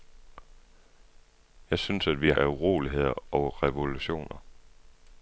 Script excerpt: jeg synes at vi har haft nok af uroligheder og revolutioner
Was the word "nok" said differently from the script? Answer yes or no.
yes